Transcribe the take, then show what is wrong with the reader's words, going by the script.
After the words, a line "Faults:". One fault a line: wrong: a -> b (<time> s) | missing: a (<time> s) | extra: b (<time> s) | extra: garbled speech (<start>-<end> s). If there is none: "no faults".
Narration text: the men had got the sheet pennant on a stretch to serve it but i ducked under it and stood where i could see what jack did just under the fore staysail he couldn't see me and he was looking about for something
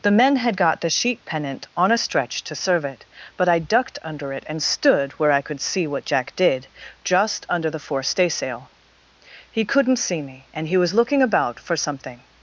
the men had got the sheet pennant on a stretch to serve it but i ducked under it and stood where i could see what jack did just under the fore staysail he couldn't see me and he was looking about for something
Faults:
no faults